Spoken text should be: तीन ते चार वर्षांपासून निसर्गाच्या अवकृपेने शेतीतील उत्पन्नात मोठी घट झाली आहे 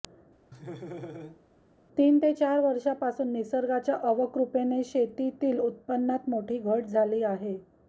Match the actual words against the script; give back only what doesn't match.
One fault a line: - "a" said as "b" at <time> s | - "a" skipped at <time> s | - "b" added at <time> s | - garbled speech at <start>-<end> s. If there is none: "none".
none